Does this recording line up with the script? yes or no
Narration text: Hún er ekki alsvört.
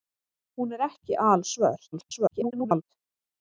no